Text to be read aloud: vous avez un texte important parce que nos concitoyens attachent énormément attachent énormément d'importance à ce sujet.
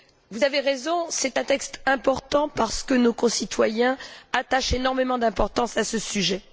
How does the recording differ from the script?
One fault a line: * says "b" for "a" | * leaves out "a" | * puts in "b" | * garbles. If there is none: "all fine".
* puts in "raison c'est"
* leaves out "attachent énormément"